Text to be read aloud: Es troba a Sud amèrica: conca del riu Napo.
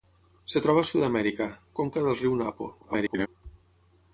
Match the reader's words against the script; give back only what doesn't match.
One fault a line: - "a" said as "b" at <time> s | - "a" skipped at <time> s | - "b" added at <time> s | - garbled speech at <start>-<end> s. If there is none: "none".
- garbled speech at 2.8-3.3 s